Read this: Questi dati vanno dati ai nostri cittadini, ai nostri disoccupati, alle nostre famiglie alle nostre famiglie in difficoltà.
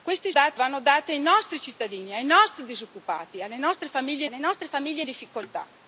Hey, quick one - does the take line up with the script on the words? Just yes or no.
yes